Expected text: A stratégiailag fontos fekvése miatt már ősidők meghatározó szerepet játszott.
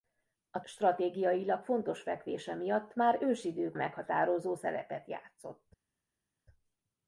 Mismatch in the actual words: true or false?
false